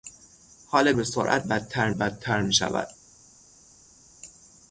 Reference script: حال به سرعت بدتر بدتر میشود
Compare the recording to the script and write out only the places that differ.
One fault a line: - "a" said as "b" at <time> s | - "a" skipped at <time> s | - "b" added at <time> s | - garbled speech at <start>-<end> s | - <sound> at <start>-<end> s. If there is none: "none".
none